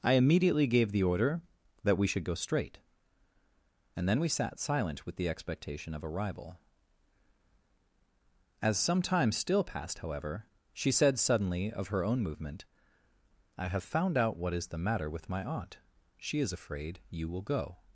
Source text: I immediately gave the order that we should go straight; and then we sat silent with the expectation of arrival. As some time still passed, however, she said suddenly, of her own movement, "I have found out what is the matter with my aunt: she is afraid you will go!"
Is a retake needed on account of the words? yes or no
no